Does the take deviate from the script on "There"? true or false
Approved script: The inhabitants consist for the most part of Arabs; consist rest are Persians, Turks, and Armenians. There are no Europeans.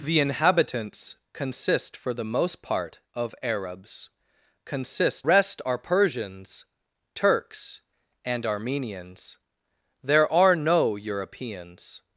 false